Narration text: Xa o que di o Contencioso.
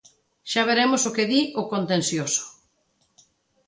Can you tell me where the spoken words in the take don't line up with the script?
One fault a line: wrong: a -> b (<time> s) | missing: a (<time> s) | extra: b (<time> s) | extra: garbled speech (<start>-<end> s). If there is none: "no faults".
extra: veremos (0.7 s)